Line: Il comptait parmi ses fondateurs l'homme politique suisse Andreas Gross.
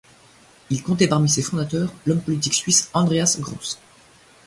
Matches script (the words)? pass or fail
pass